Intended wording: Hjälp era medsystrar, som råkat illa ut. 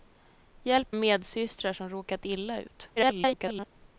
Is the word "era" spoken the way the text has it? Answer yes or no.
no